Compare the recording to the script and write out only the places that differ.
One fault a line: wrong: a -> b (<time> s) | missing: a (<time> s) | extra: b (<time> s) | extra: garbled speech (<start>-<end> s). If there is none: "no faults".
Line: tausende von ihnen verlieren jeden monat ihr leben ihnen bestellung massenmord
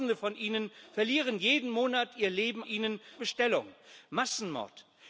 no faults